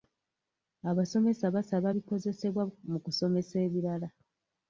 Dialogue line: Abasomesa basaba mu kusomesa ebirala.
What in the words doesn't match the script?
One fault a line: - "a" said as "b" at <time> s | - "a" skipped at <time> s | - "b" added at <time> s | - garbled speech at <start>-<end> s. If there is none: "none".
- "bikozesebwa" added at 1.9 s